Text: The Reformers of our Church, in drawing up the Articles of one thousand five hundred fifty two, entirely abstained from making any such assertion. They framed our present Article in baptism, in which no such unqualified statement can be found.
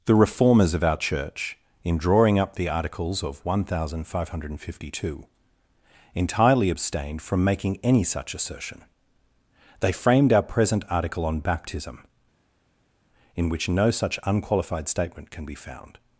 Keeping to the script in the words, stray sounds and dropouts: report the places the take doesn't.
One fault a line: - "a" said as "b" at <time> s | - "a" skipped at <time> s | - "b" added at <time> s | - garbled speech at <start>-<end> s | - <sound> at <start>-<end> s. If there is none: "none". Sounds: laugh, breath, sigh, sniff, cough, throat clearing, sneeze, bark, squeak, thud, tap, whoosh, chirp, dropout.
- "in" said as "on" at 11.2 s